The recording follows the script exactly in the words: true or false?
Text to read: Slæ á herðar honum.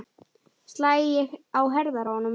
true